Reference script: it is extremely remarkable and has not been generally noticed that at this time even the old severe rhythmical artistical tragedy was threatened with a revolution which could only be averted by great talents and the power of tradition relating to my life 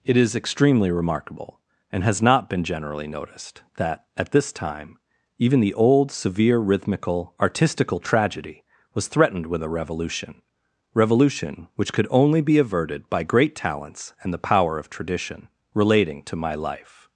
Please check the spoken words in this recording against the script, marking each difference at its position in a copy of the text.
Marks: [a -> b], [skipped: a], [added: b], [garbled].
it is extremely remarkable and has not been generally noticed that at this time even the old severe rhythmical artistical tragedy was threatened with a revolution [added: revolution] which could only be averted by great talents and the power of tradition relating to my life